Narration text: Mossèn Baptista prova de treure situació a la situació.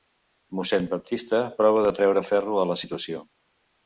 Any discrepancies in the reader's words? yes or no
yes